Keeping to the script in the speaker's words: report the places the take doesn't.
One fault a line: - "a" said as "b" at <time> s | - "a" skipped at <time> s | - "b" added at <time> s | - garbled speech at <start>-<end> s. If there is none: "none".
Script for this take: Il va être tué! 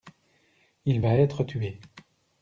none